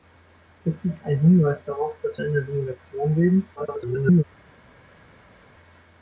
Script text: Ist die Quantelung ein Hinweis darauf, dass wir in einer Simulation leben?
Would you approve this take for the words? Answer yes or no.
no